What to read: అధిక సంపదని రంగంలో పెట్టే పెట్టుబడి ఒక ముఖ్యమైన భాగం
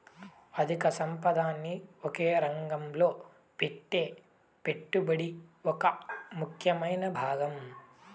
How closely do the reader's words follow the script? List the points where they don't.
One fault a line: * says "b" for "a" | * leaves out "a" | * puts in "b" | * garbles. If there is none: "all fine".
* puts in "ఒకే"